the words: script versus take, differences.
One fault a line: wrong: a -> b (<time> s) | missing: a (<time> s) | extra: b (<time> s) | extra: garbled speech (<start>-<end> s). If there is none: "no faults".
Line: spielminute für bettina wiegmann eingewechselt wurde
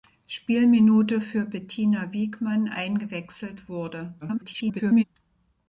extra: garbled speech (4.2-5.0 s)